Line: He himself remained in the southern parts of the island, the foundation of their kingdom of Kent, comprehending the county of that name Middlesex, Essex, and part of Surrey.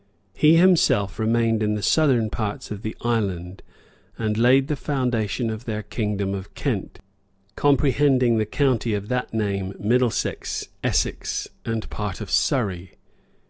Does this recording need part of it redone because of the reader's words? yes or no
yes